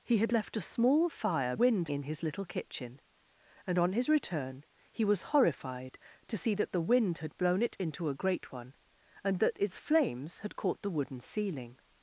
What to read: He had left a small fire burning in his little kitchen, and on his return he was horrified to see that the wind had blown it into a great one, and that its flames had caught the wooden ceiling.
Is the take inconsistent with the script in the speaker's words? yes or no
yes